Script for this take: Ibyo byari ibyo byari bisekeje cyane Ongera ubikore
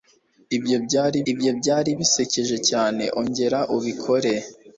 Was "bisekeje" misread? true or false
false